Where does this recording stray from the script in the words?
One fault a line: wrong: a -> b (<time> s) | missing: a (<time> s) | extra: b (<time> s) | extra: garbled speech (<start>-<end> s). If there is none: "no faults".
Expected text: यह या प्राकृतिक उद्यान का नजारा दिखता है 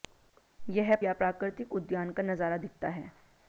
no faults